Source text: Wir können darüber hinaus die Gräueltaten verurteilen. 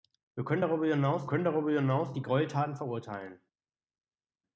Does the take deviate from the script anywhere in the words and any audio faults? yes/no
yes